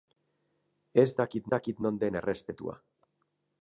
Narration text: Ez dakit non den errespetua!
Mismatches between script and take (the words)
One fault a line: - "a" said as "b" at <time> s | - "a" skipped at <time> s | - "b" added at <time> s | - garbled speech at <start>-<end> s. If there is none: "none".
- "dakit" added at 1.5 s